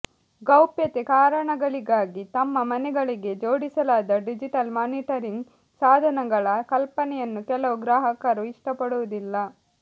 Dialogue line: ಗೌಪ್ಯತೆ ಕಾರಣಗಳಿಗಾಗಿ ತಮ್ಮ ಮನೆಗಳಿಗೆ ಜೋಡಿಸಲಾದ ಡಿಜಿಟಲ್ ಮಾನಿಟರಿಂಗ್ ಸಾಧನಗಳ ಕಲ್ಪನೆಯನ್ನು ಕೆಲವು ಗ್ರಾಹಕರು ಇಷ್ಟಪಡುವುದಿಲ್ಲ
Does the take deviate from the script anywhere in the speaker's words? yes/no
no